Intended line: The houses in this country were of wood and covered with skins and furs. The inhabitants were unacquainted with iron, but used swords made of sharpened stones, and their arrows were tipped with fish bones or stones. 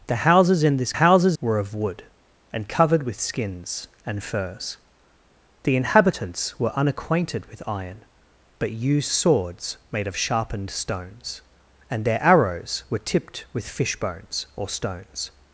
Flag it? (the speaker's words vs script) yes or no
yes